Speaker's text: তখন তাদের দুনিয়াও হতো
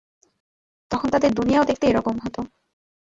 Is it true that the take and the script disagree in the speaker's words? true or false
true